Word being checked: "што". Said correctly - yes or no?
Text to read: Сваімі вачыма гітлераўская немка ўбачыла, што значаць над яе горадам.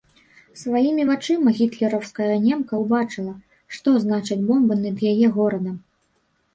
yes